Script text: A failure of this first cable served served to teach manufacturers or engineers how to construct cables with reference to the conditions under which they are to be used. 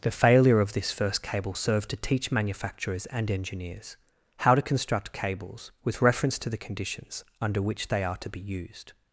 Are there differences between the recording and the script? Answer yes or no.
yes